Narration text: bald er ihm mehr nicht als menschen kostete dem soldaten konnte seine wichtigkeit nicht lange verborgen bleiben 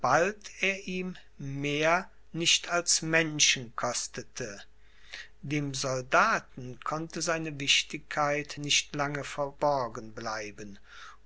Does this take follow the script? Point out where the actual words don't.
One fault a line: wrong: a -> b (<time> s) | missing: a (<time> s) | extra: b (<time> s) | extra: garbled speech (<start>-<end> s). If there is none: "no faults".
no faults